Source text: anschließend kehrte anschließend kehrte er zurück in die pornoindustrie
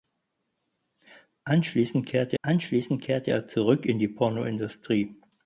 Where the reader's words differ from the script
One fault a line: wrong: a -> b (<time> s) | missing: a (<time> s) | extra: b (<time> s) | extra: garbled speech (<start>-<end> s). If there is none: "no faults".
no faults